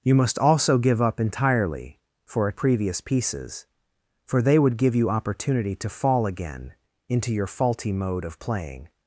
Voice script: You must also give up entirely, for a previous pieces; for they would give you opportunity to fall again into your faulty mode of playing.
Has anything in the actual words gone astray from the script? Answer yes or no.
no